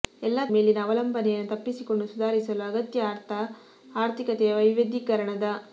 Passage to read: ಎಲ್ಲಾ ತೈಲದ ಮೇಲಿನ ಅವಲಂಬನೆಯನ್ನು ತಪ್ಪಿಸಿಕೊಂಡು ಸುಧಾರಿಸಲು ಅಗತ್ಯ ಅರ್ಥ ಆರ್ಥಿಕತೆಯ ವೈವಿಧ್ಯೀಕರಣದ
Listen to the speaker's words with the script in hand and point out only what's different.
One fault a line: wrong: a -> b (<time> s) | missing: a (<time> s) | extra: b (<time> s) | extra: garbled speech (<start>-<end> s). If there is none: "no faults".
missing: ತೈಲದ (0.4 s)